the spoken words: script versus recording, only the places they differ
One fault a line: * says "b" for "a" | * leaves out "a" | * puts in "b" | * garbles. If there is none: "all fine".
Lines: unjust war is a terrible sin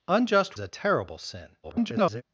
* leaves out "war is"
* garbles